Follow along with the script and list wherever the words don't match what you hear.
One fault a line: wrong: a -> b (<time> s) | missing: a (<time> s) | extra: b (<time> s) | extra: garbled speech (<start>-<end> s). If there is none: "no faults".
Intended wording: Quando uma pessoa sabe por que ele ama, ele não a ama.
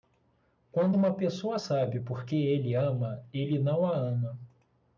no faults